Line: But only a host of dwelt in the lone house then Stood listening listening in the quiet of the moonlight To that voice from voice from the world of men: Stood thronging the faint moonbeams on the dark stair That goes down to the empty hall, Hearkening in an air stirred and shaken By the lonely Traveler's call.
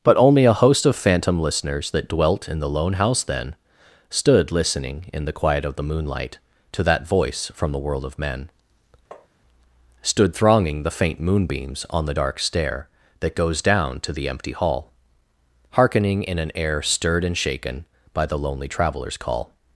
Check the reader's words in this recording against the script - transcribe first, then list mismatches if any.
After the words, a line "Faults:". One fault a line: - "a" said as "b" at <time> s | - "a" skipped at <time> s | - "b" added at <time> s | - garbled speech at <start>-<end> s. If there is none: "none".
But only a host of phantom listeners That dwelt in the lone house then Stood listening in the quiet of the moonlight To that voice from the world of men: Stood thronging the faint moonbeams on the dark stair That goes down to the empty hall, Hearkening in an air stirred and shaken By the lonely Traveler's call.
Faults:
- "phantom listeners That" added at 0.9 s
- "listening" skipped at 5.0 s
- "voice from" skipped at 7.7 s